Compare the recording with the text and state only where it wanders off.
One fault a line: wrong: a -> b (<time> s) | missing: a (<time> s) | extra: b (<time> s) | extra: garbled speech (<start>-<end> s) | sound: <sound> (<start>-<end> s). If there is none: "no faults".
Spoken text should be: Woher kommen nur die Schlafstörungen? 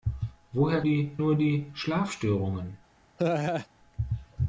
wrong: kommen -> die (0.8 s)
sound: laugh (3.2-3.7 s)